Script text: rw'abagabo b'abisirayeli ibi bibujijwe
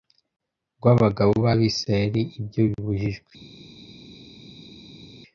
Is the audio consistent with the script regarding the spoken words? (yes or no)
no